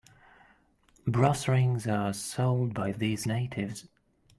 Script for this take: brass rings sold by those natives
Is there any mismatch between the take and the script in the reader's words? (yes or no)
yes